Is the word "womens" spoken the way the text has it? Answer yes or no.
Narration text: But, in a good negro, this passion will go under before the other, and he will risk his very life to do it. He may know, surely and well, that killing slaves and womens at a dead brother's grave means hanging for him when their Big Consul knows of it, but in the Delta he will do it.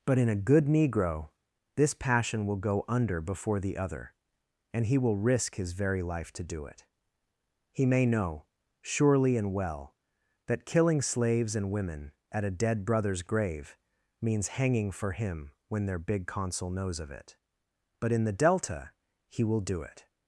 no